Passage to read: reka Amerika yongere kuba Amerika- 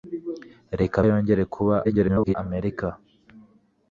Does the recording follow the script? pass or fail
fail